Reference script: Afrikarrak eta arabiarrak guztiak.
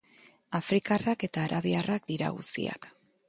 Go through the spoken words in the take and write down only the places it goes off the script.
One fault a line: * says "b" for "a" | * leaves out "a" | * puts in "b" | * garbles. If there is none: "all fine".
* puts in "dira"